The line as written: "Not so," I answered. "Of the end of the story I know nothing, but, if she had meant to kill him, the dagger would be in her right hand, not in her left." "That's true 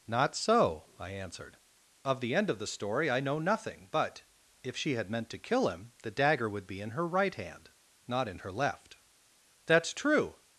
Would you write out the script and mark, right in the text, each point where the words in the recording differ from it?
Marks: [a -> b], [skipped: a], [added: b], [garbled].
"Not so," I answered. "Of the end of the story I know nothing, but, if she had meant to kill him, the dagger would be in her right hand, not in her left." "That's true